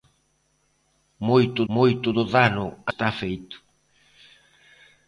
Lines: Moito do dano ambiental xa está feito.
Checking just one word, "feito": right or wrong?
right